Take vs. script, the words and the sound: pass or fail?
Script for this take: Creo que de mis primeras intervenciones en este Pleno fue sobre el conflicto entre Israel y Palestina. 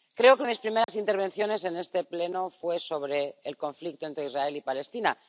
fail